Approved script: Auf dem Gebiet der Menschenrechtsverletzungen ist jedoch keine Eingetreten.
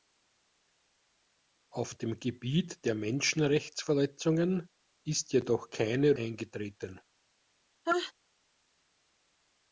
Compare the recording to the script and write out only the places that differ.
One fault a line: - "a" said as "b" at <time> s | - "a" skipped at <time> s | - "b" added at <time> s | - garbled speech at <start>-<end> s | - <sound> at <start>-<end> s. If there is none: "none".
- sneeze at 7.8-8.1 s